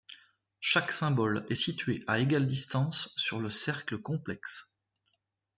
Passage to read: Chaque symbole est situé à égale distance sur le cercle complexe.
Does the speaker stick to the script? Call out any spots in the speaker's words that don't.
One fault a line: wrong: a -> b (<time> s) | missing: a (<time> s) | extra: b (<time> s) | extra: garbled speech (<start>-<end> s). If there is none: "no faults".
no faults